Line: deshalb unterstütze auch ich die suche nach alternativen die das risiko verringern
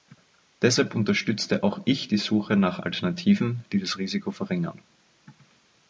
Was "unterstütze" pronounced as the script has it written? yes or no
yes